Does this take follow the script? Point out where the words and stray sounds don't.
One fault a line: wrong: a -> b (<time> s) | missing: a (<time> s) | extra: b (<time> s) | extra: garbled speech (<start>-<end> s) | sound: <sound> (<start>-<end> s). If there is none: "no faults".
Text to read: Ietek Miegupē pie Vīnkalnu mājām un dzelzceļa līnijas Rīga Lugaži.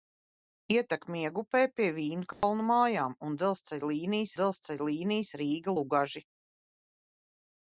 sound: dropout (2.3-2.4 s)
extra: dzelzceļa līnijas (4.4 s)